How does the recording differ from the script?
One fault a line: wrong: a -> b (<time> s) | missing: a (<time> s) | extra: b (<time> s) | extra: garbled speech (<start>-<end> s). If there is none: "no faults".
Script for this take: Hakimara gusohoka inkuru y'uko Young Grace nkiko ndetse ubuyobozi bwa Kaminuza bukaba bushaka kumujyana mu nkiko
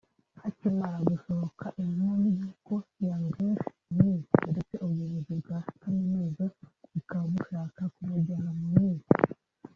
no faults